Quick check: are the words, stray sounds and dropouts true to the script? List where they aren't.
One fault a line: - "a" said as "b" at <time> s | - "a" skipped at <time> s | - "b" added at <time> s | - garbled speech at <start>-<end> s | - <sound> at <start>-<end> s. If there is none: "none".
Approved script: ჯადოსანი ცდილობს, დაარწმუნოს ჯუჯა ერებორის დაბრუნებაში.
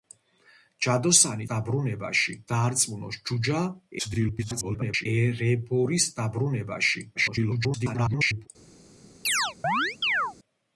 - "ცდილობს" said as "დაბრუნებაში" at 1.5 s
- garbled speech at 4.0-5.1 s
- garbled speech at 7.1-8.5 s
- chirp at 9.2-10.3 s